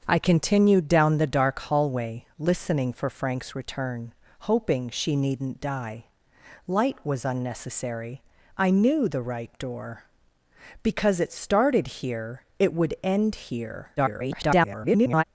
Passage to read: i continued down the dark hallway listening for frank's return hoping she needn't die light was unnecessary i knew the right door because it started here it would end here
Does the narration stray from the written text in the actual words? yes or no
yes